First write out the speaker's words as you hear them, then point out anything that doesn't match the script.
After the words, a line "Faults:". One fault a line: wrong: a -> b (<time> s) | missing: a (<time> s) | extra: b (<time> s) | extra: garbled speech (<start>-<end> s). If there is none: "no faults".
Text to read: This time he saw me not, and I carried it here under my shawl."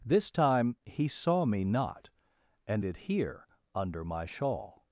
This time he saw me not, and it here under my shawl."
Faults:
missing: I carried (2.8 s)